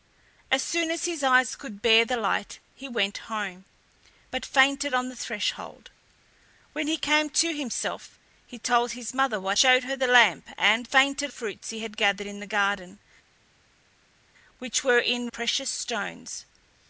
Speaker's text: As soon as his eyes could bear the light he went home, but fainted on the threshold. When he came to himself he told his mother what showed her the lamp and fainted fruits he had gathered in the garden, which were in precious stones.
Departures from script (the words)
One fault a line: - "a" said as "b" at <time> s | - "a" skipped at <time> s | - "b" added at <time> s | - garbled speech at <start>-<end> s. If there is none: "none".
none